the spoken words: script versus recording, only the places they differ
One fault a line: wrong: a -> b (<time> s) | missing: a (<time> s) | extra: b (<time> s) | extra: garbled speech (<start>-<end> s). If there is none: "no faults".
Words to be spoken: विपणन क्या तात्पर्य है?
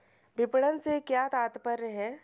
extra: से (0.8 s)